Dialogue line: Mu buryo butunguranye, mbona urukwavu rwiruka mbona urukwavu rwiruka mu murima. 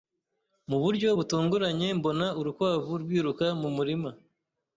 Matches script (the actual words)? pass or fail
fail